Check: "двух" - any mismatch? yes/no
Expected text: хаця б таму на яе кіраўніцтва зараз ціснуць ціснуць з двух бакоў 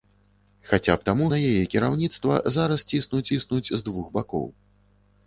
no